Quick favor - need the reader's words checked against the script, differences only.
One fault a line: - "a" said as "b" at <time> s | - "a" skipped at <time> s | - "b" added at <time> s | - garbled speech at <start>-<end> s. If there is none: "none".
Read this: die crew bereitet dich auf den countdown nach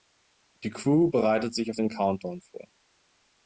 - "dich" said as "sich" at 1.5 s
- "nach" said as "vor" at 2.4 s